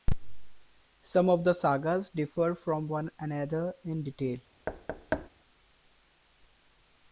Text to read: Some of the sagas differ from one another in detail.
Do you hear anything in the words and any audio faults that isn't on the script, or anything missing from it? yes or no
yes